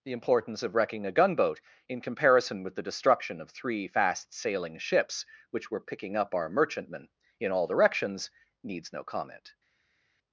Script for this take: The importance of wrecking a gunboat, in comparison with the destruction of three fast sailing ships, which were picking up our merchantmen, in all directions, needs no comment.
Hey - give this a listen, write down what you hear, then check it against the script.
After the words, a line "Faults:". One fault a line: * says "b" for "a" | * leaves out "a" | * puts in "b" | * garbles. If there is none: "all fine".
The importance of wrecking a gunboat, in comparison with the destruction of three fast sailing ships, which were picking up our merchantmen, in all directions, needs no comment.
Faults:
all fine